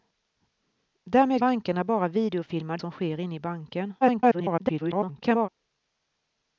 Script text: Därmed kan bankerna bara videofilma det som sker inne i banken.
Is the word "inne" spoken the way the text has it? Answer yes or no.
yes